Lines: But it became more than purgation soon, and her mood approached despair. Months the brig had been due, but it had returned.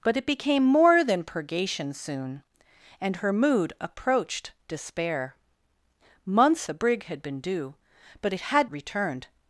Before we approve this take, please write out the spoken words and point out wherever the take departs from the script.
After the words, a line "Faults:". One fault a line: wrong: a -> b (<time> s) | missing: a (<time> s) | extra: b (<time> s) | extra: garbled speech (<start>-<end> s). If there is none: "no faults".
But it became more than purgation soon, and her mood approached despair. Months the brig had been due, but it had returned.
Faults:
no faults